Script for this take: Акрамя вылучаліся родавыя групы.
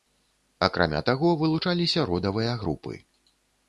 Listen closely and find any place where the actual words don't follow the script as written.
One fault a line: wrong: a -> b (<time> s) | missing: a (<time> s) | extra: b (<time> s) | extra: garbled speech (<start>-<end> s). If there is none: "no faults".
extra: таго (1.1 s)